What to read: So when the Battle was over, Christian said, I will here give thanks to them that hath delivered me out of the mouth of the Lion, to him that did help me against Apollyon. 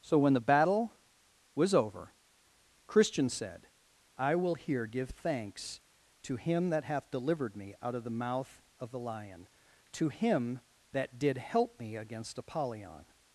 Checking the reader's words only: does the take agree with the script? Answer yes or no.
no